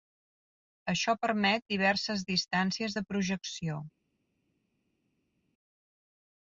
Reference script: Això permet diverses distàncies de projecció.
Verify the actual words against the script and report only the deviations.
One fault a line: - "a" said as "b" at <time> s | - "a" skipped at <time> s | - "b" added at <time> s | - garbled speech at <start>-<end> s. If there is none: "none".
none